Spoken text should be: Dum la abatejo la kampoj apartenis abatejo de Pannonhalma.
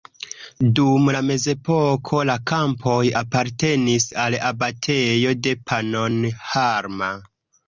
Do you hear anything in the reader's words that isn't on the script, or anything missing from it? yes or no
yes